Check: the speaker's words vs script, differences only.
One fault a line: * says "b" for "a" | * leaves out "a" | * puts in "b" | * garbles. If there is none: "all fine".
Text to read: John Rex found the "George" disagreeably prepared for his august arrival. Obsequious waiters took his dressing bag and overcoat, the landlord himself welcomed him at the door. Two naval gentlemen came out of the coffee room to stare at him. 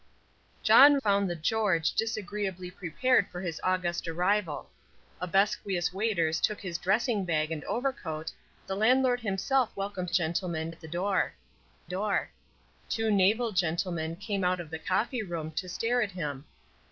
* leaves out "Rex"
* says "gentlemen" for "him"
* puts in "door"